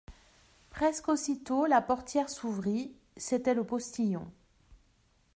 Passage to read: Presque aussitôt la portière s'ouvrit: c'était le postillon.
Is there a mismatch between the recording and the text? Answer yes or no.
no